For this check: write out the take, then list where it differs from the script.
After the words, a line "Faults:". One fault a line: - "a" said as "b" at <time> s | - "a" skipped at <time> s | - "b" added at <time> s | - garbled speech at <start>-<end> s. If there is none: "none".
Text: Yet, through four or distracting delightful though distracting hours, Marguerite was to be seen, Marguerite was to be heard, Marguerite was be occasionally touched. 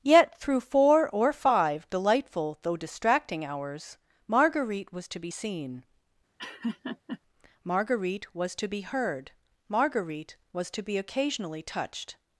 Yet, through four or five delightful though distracting hours, Marguerite was to be seen, Marguerite was to be heard, Marguerite was to be occasionally touched.
Faults:
- "distracting" said as "five" at 1.3 s
- "to" added at 10.7 s